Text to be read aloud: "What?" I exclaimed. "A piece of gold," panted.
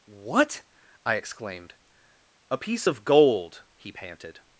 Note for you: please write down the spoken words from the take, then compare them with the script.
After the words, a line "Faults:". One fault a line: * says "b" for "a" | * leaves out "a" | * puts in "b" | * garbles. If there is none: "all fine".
"What?" I exclaimed. "A piece of gold," he panted.
Faults:
* puts in "he"